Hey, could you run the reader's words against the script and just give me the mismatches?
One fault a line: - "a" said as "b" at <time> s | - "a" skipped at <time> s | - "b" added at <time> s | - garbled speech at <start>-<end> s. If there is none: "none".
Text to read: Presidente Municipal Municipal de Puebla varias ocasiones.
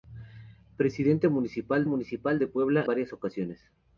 none